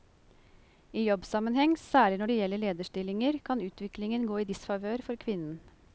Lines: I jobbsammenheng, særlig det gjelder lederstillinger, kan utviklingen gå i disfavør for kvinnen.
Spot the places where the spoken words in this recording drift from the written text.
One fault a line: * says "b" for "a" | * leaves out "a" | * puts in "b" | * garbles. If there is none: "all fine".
* puts in "når"